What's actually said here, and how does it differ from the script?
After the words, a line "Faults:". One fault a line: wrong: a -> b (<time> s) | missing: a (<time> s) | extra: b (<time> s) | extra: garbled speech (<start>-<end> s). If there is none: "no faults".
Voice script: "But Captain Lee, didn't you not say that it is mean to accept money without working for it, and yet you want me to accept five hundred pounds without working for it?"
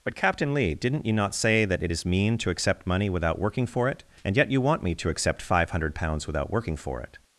"But Captain Lee, didn't you not say that it is mean to accept money without working for it, and yet you want me to accept five hundred pounds without working for it?"
Faults:
no faults